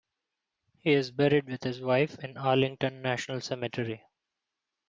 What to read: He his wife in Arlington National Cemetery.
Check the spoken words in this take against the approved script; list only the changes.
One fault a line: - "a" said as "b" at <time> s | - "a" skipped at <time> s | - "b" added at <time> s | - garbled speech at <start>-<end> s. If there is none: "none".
- "is buried with" added at 0.9 s